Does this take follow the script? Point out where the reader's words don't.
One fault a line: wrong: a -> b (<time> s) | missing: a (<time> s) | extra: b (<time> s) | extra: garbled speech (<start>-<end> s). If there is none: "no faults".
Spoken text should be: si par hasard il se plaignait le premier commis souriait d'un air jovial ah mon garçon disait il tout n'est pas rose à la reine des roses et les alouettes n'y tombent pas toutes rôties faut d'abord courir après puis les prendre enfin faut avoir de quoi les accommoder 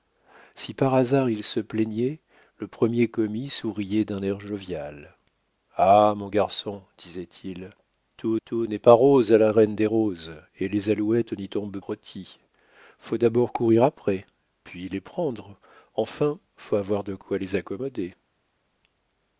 extra: tout (8.4 s)
missing: pas toutes (11.8 s)